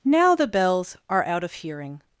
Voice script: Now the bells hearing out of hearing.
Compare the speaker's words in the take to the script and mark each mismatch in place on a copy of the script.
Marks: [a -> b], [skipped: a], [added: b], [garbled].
Now the bells [hearing -> are] out of hearing.